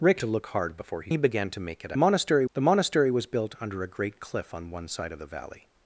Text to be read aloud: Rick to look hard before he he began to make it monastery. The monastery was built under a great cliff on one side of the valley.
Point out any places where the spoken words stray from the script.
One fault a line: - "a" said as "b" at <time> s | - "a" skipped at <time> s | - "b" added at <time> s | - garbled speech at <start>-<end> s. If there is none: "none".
none